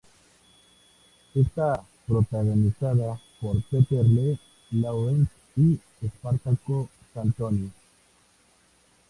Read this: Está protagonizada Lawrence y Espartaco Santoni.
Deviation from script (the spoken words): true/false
true